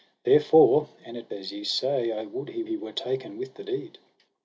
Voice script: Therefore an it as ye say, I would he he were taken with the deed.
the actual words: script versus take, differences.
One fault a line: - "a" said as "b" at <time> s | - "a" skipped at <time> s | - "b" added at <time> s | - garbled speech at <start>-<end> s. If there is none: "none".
none